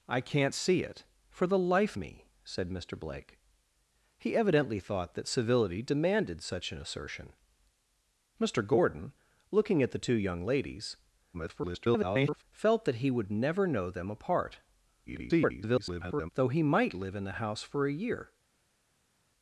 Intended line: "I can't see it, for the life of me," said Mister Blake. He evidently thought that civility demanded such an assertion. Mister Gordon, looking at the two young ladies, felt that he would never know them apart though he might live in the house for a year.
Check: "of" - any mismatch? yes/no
yes